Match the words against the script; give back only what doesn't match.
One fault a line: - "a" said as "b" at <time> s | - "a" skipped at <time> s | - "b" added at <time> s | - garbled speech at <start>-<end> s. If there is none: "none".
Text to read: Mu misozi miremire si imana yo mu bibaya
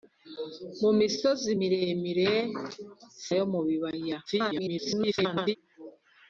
- "si imana" skipped at 2.3 s
- garbled speech at 4.3-5.6 s